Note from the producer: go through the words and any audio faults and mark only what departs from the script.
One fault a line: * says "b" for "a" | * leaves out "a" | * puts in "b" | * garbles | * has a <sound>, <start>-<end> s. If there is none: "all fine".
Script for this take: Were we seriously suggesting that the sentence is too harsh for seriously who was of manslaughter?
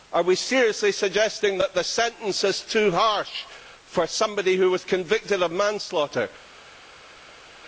* says "Are" for "Were"
* says "somebody" for "seriously"
* puts in "convicted"